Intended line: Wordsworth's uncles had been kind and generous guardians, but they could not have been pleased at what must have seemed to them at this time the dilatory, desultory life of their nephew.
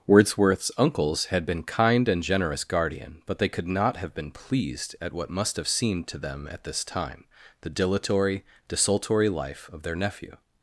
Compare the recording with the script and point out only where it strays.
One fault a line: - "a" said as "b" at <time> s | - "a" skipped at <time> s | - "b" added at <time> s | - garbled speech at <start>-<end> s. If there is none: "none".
- "guardians" said as "guardian" at 2.6 s